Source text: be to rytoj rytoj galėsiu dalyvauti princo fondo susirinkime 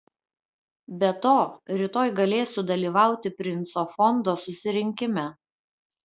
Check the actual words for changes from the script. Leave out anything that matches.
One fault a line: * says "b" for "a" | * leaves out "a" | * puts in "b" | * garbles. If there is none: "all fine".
* leaves out "rytoj"